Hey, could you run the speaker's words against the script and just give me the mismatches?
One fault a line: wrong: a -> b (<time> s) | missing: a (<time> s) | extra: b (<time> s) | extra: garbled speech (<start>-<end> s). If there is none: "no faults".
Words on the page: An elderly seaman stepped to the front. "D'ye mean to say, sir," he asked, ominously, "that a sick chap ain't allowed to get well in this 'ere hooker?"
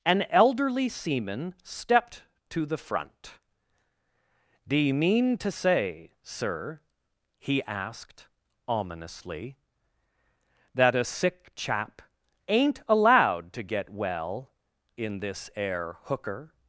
no faults